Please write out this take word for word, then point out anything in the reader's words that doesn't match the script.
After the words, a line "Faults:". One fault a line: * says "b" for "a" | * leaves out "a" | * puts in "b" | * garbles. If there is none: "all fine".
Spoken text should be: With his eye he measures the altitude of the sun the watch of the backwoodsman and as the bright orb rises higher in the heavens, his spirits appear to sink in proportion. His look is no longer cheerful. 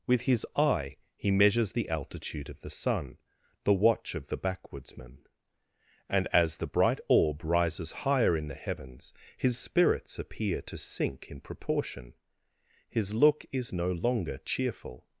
With his eye he measures the altitude of the sun the watch of the backwoodsman and as the bright orb rises higher in the heavens, his spirits appear to sink in proportion. His look is no longer cheerful.
Faults:
all fine